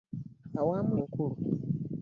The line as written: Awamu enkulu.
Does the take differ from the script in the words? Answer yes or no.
no